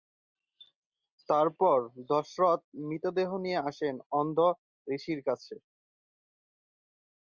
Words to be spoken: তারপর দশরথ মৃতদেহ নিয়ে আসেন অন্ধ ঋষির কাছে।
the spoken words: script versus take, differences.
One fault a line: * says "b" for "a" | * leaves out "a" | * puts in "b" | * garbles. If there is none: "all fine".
all fine